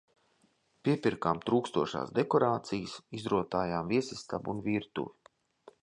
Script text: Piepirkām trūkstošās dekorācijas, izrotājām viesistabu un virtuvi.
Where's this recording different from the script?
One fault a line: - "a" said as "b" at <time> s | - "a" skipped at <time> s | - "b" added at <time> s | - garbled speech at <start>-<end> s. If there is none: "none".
none